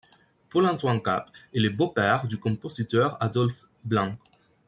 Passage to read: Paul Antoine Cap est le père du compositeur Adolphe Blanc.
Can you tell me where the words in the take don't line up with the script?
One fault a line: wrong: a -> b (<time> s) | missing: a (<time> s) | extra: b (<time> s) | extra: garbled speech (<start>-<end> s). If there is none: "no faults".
extra: beau (1.7 s)